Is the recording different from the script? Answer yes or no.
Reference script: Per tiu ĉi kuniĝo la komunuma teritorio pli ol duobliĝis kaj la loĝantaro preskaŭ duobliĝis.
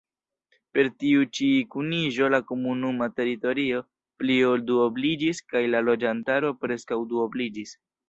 no